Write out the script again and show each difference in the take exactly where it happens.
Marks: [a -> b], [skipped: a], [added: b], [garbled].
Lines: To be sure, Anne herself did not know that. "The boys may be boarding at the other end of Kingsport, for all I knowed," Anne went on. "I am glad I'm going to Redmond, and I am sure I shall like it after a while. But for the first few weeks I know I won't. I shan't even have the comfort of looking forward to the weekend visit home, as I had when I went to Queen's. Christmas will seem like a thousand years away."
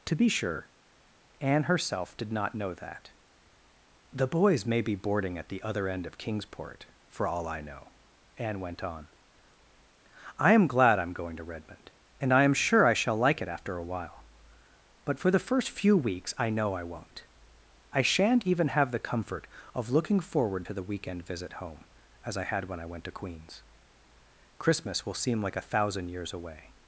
To be sure, Anne herself did not know that. "The boys may be boarding at the other end of Kingsport, for all I [knowed," -> know] Anne went on. "I am glad I'm going to Redmond, and I am sure I shall like it after a while. But for the first few weeks I know I won't. I shan't even have the comfort of looking forward to the weekend visit home, as I had when I went to Queen's. Christmas will seem like a thousand years away."